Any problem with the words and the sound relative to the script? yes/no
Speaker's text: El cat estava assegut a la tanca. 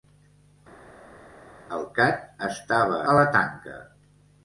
yes